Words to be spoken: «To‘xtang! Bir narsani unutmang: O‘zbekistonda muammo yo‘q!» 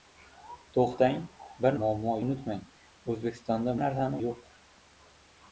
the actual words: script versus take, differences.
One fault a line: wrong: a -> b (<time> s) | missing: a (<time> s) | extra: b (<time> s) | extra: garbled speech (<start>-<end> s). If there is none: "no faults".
wrong: narsani -> muammo (1.8 s)
wrong: muammo -> narsani (3.8 s)